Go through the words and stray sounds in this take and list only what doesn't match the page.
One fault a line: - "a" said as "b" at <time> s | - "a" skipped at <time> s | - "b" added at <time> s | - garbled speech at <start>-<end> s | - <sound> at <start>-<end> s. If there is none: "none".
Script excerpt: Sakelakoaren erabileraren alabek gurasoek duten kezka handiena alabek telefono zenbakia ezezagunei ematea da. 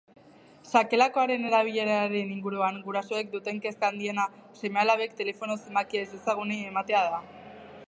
- "alabek" said as "inguruan" at 2.3 s
- "seme" added at 4.6 s